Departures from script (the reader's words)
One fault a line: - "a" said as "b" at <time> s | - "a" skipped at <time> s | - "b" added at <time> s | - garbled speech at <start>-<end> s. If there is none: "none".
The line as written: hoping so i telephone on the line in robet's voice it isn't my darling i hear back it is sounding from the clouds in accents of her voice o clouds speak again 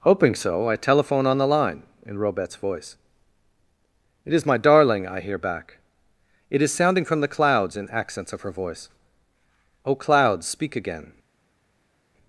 - "isn't" said as "is" at 4.3 s